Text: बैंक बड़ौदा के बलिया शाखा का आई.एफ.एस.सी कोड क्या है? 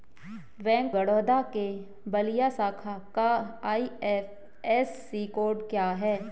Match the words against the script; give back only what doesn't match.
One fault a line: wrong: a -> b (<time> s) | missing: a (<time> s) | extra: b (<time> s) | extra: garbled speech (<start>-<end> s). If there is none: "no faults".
no faults